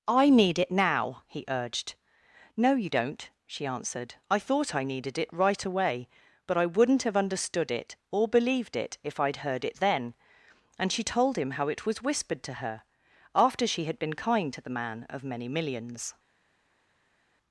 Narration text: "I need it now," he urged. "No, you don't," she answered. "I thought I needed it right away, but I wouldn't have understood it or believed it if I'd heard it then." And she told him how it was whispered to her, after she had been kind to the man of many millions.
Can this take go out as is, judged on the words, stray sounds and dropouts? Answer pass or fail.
pass